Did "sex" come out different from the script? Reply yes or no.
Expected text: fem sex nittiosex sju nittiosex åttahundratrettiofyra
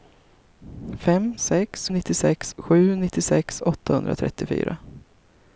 no